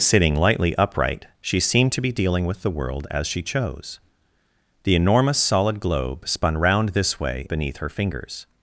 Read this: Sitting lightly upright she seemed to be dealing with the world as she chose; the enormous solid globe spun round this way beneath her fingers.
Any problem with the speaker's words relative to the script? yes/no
no